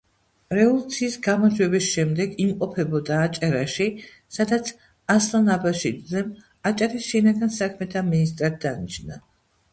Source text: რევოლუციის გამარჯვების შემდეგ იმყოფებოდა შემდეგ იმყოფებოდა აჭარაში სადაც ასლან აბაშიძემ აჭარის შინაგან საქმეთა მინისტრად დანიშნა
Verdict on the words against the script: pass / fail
fail